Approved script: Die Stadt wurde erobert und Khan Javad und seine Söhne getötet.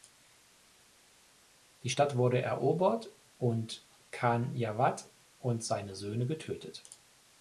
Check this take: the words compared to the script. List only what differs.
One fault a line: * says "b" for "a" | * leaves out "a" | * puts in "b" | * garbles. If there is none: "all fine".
all fine